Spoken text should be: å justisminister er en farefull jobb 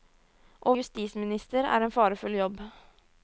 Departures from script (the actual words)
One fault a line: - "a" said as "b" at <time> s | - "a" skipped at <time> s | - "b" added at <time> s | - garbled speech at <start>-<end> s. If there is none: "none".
none